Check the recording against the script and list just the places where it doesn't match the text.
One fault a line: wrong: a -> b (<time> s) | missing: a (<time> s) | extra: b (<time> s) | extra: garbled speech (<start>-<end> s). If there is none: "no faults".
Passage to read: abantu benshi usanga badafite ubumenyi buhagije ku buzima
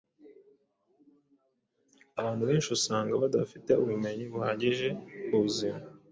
no faults